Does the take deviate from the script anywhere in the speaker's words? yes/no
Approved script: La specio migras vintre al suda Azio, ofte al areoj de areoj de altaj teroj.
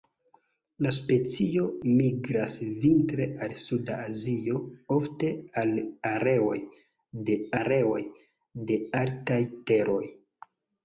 no